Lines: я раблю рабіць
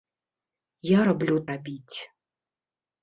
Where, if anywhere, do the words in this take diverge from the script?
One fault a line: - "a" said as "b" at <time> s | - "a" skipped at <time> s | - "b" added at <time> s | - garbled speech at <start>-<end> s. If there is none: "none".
none